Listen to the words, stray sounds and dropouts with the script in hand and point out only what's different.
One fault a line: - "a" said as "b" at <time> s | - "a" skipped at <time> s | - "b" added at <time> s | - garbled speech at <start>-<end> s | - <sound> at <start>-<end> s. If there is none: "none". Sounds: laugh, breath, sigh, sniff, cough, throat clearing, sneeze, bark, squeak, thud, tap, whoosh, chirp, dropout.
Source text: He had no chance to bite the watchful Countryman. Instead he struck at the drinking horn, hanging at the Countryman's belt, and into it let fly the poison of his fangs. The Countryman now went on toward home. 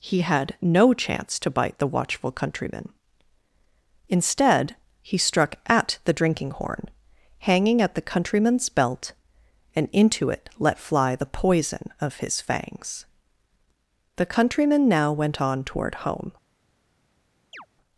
- chirp at 17.5-17.7 s